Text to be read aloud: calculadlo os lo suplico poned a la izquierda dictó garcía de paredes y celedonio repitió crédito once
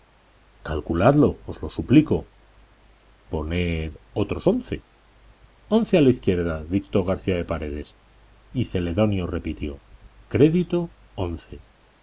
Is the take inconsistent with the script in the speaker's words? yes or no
yes